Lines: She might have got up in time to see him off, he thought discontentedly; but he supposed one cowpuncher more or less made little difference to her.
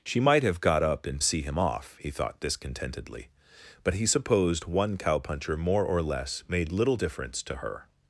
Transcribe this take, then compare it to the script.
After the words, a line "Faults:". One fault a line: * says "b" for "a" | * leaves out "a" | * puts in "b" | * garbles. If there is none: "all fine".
She might have got up in see him off, he thought discontentedly; but he supposed one cowpuncher more or less made little difference to her.
Faults:
* leaves out "time to"